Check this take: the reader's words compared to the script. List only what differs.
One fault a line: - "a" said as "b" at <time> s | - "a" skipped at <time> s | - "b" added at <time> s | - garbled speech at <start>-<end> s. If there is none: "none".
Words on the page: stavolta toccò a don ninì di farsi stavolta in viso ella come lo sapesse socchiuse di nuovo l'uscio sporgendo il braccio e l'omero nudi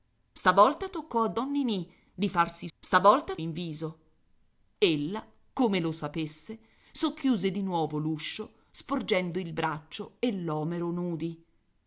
none